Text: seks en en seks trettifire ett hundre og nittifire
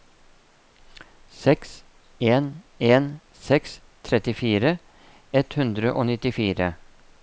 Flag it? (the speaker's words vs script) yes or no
no